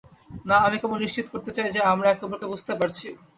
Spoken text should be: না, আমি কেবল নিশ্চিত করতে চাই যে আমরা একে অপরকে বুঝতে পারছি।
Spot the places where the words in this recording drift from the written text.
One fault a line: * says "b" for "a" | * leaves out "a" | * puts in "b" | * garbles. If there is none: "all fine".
all fine